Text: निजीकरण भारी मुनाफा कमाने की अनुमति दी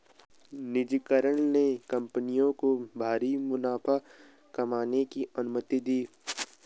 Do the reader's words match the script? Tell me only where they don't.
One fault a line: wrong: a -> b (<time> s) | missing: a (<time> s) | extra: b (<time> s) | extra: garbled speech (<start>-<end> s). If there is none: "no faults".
extra: ने कंपनियों को (1.4 s)